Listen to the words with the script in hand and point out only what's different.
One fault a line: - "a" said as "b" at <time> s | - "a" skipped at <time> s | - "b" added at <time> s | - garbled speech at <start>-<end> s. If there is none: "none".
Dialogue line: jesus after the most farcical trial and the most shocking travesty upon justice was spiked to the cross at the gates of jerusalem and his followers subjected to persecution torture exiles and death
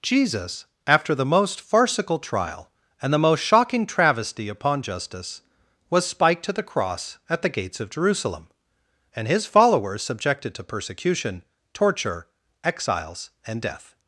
none